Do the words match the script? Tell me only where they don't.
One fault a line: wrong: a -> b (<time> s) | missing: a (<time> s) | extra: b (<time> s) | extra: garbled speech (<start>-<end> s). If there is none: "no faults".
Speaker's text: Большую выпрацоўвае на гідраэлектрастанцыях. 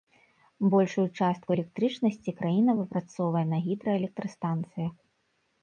extra: частку электрычнасці краіна (1.2 s)